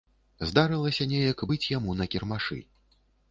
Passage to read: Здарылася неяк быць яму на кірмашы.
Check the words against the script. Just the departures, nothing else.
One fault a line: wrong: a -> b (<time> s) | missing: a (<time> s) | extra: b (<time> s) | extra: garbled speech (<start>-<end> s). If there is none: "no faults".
no faults